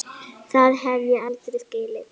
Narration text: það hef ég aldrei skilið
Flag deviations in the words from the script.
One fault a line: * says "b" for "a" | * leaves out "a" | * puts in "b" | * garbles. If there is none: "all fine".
all fine